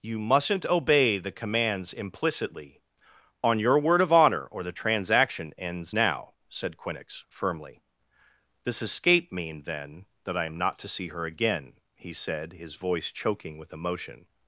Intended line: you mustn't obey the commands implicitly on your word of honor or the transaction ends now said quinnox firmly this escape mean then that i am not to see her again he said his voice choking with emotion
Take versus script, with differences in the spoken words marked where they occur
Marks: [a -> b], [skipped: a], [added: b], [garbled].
you mustn't obey the commands implicitly on your word of honor or the transaction ends now said quinnox firmly this escape mean then that i am not to see her again he said his voice choking with emotion